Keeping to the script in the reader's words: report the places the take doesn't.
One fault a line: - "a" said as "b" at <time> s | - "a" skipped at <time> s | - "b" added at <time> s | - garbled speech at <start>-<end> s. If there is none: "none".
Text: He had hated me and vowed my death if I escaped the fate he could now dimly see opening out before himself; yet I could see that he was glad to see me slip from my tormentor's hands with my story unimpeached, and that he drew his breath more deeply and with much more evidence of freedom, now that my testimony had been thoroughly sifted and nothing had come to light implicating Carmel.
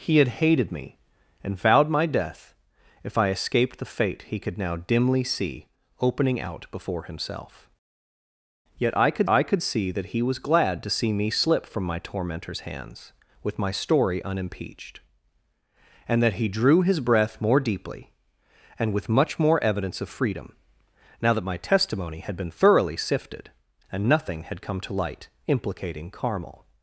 - "I could" added at 9.3 s